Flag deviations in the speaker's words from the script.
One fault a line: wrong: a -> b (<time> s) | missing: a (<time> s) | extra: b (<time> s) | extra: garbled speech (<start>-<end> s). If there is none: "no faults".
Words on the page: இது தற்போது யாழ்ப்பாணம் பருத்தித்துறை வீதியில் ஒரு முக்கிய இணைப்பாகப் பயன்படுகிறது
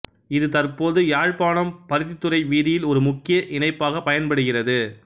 no faults